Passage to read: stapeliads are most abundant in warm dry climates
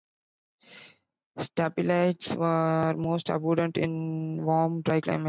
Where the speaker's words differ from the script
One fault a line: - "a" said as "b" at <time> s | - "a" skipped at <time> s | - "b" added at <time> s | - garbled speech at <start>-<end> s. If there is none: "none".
none